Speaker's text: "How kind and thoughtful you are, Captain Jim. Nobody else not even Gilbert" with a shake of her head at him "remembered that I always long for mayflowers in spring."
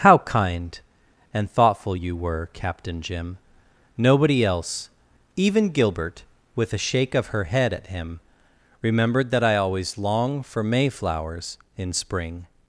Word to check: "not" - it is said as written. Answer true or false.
false